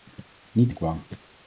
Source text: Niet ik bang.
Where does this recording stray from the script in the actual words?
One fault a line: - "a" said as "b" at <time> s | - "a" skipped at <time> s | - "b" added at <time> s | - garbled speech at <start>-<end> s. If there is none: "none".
none